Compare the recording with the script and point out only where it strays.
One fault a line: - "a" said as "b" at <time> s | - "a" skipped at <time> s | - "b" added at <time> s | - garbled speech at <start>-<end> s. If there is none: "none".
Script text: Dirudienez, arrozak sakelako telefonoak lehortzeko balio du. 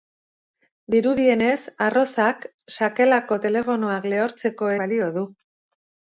none